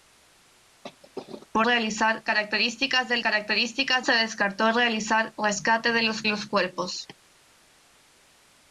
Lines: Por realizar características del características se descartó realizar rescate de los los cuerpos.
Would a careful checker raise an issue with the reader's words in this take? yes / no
no